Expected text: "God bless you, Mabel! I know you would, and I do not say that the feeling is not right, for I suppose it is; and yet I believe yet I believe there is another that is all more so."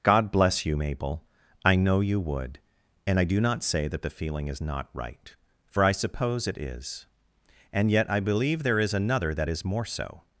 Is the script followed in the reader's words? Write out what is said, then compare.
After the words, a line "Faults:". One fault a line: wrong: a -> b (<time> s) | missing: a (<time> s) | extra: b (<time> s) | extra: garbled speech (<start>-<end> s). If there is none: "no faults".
"God bless you, Mabel! I know you would, and I do not say that the feeling is not right, for I suppose it is; and yet I believe there is another that is more so."
Faults:
missing: yet I believe (8.6 s)
missing: all (9.6 s)